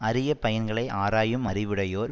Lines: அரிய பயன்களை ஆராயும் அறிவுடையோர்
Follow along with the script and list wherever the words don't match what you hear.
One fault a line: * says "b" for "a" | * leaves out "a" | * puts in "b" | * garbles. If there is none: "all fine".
all fine